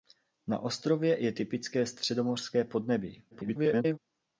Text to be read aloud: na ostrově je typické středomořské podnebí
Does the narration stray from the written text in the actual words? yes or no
yes